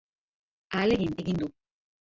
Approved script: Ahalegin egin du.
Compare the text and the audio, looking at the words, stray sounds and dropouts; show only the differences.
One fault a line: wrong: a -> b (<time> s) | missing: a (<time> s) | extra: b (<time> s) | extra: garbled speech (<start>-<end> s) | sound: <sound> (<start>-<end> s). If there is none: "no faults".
no faults